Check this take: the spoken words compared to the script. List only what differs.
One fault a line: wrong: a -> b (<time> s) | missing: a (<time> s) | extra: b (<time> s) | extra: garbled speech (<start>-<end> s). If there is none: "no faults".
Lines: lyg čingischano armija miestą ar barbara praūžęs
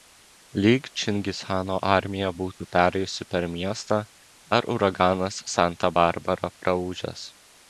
extra: būtų perėjusi per (2.4 s)
extra: uraganas santa (4.8 s)